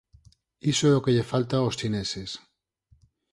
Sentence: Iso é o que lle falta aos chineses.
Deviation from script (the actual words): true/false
false